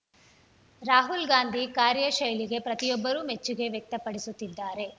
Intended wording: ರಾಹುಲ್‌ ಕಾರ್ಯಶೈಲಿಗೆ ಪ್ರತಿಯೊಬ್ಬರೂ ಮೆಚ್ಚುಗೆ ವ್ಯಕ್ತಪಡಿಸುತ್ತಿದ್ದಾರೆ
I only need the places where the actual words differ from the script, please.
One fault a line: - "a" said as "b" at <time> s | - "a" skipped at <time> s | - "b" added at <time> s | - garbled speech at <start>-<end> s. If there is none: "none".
- "ಗಾಂಧಿ" added at 1.3 s